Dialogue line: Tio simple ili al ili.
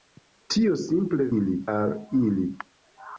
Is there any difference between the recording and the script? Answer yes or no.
no